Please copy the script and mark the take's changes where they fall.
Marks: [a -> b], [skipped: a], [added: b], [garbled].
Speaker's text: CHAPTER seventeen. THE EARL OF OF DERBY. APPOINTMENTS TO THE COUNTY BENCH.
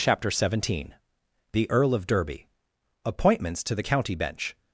CHAPTER seventeen. THE EARL OF [skipped: OF] DERBY. APPOINTMENTS TO THE COUNTY BENCH.